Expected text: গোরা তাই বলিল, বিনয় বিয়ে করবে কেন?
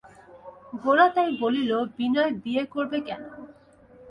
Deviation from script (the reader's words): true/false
false